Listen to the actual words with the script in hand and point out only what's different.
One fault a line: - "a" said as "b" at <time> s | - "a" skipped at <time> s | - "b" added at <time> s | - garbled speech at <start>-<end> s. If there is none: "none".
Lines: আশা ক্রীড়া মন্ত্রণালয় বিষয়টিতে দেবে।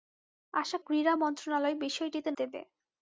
none